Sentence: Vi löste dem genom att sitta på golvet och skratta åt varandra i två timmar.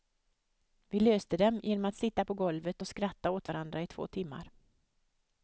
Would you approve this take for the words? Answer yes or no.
yes